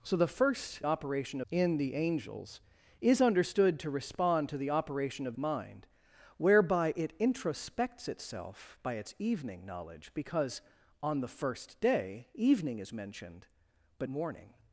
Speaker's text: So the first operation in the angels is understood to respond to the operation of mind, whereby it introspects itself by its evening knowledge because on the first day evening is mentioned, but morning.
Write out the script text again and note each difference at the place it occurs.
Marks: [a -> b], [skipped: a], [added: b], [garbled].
So the first operation in the angels is understood to respond to the operation of mind, whereby it introspects itself by its evening knowledge because on the first day evening is mentioned, but morning.